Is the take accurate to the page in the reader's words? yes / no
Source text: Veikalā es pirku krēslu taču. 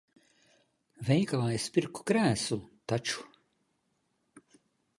yes